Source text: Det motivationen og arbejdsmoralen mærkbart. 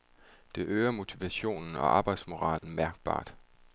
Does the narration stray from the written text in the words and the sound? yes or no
yes